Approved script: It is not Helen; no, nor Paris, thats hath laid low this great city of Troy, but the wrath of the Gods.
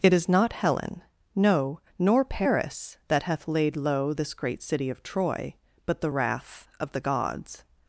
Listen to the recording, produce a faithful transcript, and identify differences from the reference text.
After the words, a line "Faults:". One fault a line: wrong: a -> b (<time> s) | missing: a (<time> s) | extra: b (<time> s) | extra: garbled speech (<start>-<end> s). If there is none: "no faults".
It is not Helen; no, nor Paris, that hath laid low this great city of Troy, but the wrath of the Gods.
Faults:
wrong: thats -> that (3.1 s)